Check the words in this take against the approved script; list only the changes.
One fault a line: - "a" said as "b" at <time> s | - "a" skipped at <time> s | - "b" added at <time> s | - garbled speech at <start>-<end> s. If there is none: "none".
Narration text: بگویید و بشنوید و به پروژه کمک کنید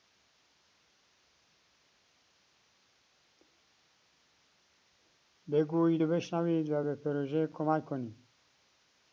none